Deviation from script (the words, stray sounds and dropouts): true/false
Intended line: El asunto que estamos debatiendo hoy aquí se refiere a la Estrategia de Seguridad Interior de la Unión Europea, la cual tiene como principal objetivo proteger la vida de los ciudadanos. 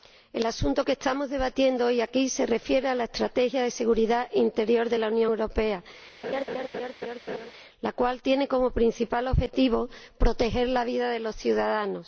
true